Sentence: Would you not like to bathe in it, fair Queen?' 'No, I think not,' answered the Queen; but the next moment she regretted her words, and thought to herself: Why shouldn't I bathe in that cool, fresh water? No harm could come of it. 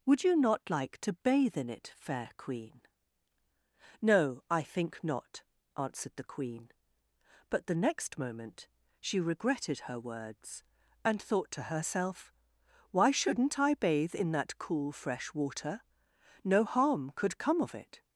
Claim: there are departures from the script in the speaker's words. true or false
false